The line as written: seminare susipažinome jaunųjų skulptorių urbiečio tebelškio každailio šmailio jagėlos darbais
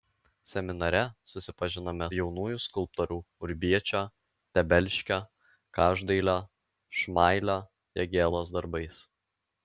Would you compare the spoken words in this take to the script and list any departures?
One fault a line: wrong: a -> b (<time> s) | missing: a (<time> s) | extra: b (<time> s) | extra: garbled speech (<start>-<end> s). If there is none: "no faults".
no faults